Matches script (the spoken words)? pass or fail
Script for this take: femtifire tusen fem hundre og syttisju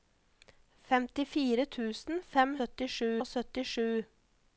fail